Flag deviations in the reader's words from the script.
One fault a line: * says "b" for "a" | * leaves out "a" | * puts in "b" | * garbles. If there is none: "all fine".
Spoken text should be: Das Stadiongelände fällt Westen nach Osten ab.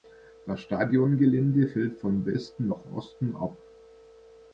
* puts in "von"